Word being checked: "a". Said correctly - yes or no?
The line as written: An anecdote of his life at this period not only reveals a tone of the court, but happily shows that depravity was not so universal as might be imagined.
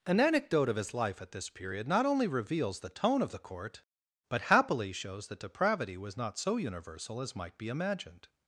no